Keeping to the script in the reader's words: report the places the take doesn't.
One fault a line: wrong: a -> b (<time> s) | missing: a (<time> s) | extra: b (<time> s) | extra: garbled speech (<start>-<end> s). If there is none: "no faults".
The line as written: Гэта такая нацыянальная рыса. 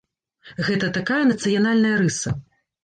no faults